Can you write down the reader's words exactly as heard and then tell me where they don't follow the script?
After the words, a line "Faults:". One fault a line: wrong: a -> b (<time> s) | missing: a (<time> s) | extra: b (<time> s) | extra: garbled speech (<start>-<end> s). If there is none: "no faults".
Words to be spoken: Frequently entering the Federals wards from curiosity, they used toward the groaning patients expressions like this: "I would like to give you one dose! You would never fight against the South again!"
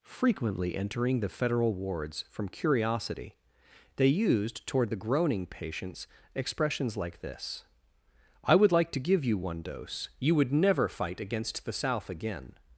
Frequently entering the Federal wards from curiosity, they used toward the groaning patients expressions like this: "I would like to give you one dose! You would never fight against the South again!"
Faults:
wrong: Federals -> Federal (1.3 s)